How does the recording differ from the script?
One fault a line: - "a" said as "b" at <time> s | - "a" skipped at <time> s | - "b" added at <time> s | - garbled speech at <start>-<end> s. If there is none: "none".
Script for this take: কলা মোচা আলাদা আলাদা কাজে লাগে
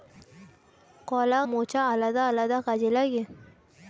none